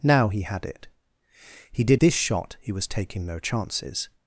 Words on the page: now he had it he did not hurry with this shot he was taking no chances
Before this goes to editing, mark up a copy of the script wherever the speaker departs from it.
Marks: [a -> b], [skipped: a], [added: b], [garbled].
now he had it he did [skipped: not hurry with] this shot he was taking no chances